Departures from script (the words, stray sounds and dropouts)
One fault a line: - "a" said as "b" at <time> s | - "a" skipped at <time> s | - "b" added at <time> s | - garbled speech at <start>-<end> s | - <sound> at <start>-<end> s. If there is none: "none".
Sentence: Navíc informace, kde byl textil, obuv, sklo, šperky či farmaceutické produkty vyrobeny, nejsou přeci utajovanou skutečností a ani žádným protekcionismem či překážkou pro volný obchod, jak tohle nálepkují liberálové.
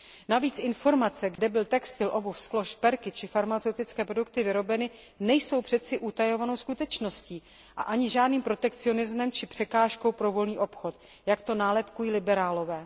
- dropout at 1.4-1.4 s
- "tohle" said as "to" at 11.4 s